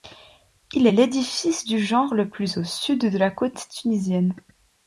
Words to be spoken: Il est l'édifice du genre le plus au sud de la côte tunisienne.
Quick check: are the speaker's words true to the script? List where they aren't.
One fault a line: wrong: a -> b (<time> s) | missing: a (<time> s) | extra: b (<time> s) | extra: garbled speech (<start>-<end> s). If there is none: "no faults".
no faults